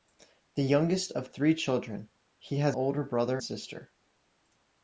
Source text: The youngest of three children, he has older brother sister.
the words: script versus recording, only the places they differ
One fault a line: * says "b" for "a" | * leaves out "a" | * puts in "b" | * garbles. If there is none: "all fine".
all fine